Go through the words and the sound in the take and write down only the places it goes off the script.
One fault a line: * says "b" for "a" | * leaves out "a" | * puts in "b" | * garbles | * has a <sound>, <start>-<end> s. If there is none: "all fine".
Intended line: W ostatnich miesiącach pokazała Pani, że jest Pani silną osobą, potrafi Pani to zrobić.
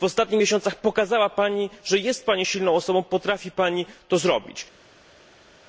all fine